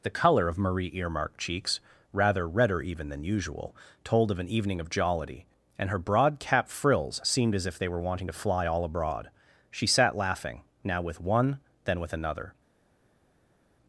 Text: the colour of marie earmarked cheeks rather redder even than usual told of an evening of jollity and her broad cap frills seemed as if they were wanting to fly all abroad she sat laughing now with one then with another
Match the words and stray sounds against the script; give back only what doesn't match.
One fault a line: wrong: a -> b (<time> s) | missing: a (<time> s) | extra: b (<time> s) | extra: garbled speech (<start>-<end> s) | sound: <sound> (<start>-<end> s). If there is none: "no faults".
no faults